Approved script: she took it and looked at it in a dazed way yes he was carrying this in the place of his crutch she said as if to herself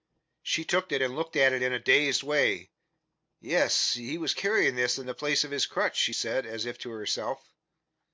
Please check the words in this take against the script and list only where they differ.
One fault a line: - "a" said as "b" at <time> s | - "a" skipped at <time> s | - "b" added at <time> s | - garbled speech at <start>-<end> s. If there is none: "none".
none